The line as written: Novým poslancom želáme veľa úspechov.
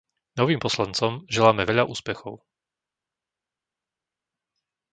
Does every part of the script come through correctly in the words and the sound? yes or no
yes